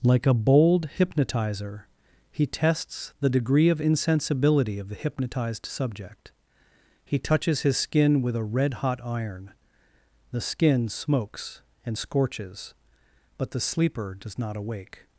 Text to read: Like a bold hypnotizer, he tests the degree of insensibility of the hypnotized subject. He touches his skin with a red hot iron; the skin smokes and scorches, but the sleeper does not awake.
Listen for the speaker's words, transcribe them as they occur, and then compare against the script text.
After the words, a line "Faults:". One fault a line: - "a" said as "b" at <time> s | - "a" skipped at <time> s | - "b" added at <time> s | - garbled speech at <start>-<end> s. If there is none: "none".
Like a bold hypnotizer, he tests the degree of insensibility of the hypnotized subject. He touches his skin with a red hot iron; the skin smokes and scorches, but the sleeper does not awake.
Faults:
none